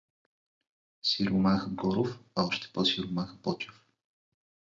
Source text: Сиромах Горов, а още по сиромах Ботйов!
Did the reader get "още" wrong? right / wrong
right